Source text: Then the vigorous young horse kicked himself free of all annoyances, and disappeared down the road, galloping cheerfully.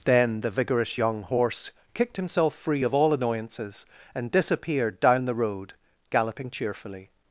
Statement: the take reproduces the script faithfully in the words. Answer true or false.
true